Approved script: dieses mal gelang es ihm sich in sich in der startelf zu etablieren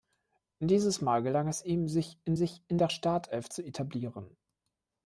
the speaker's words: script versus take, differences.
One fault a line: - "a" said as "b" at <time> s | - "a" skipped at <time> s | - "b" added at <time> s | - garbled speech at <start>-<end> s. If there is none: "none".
none